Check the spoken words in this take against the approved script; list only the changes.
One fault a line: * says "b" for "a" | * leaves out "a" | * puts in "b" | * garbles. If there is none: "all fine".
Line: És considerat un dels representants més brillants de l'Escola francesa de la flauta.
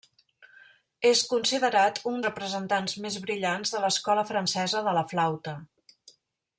* leaves out "dels"